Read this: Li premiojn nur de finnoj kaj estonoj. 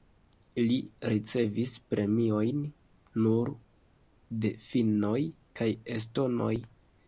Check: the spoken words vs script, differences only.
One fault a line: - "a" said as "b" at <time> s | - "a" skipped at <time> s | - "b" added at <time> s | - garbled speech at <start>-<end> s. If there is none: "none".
- "ricevis" added at 1.1 s